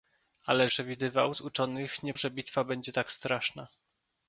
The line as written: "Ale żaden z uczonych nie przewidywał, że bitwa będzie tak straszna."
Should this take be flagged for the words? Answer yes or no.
yes